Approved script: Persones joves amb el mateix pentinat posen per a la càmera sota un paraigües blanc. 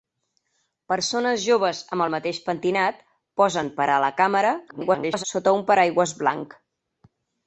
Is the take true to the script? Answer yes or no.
no